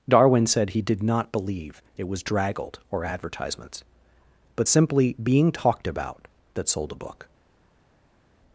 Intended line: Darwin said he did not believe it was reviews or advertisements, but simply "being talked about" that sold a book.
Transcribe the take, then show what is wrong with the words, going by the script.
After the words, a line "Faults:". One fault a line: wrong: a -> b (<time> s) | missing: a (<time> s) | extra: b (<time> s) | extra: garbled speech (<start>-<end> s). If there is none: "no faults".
Darwin said he did not believe it was draggled or advertisements, but simply "being talked about" that sold a book.
Faults:
wrong: reviews -> draggled (2.2 s)